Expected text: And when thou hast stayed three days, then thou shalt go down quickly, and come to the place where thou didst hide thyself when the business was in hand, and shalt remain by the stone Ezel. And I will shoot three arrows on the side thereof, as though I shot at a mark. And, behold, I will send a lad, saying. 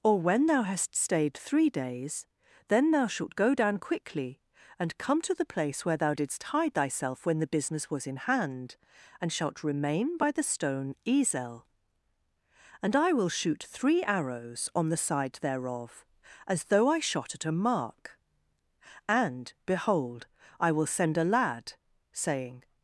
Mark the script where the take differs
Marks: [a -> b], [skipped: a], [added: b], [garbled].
[And -> Or] when thou hast stayed three days, then thou shalt go down quickly, and come to the place where thou didst hide thyself when the business was in hand, and shalt remain by the stone Ezel. And I will shoot three arrows on the side thereof, as though I shot at a mark. And, behold, I will send a lad, saying.